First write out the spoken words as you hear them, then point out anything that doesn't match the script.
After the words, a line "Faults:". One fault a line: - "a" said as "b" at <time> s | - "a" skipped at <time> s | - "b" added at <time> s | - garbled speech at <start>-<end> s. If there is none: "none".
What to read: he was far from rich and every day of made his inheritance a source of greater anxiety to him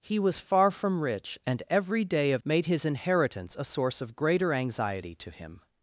he was far from rich and every day of made his inheritance a source of greater anxiety to him
Faults:
none